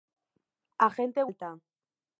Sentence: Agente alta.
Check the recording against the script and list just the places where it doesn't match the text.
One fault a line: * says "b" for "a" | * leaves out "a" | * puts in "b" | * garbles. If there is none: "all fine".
all fine